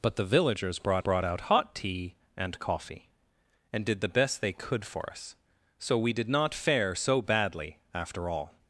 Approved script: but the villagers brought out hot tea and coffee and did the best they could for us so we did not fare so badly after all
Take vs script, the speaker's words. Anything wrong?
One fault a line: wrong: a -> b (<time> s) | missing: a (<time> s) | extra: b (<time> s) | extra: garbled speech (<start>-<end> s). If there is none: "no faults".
extra: brought (1.0 s)